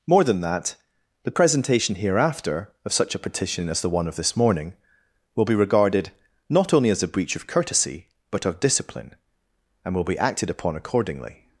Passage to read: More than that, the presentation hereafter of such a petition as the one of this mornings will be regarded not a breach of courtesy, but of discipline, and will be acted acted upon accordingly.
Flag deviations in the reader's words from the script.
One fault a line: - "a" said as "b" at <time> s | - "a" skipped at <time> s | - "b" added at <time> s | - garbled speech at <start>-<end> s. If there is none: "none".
- "mornings" said as "morning" at 4.3 s
- "only as" added at 6.7 s
- "acted" skipped at 10.5 s